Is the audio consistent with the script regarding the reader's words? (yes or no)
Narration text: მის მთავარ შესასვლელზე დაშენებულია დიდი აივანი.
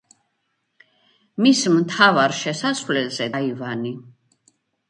no